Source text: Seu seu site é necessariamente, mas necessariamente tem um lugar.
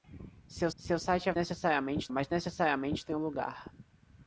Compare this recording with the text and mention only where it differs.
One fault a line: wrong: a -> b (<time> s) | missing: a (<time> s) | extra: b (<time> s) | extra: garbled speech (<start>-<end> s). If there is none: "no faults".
no faults